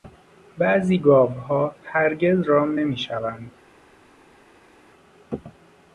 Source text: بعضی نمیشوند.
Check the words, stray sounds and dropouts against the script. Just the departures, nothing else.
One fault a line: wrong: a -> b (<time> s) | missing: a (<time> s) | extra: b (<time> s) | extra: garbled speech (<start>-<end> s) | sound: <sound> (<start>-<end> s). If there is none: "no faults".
extra: گاوها هرگز رام (1.0 s)